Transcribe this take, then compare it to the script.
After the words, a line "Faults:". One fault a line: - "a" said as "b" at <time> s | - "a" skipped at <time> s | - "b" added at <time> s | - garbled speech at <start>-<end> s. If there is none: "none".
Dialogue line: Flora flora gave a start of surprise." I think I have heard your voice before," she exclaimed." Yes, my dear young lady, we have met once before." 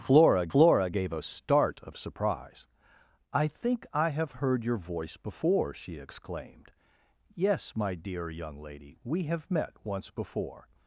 Flora flora gave a start of surprise." I think I have heard your voice before," she exclaimed." Yes, my dear young lady, we have met once before."
Faults:
none